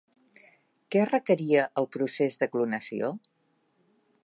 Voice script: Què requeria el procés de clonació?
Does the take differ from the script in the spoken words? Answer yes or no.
no